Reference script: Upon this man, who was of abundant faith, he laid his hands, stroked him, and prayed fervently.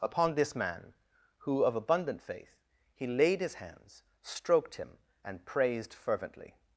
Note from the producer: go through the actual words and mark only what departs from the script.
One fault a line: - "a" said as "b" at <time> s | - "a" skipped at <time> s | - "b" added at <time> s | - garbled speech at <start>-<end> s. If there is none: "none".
- "was" skipped at 1.6 s
- "prayed" said as "praised" at 5.5 s